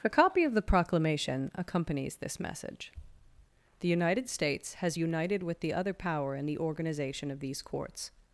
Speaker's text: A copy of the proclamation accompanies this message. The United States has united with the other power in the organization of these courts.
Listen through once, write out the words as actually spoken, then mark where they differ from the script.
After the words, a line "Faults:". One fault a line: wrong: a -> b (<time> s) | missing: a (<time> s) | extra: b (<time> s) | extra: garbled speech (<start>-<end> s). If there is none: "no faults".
A copy of the proclamation accompanies this message. The United States has united with the other power in the organization of these courts.
Faults:
no faults